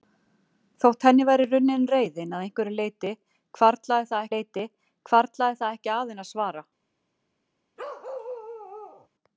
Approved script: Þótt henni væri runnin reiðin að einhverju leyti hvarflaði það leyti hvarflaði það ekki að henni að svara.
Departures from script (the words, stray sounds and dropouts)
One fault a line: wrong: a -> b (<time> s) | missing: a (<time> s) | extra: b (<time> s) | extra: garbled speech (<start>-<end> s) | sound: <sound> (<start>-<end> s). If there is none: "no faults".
sound: bark (7.8-9.1 s)